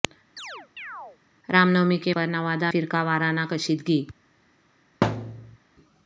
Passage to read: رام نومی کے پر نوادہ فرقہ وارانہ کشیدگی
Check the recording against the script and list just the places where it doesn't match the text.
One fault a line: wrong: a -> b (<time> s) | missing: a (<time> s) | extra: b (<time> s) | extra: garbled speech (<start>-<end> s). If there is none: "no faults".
no faults